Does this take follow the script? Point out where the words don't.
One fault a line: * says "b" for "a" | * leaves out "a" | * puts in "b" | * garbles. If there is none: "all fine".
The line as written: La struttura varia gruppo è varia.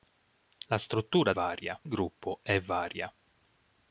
all fine